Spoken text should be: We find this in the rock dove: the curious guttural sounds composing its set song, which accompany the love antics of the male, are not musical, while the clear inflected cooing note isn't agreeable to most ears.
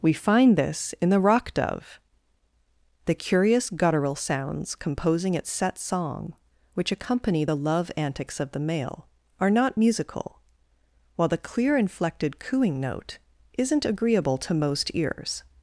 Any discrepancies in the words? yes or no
no